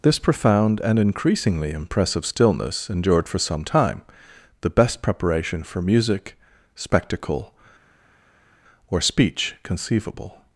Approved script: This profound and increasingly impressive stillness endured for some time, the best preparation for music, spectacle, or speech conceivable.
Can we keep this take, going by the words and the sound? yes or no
yes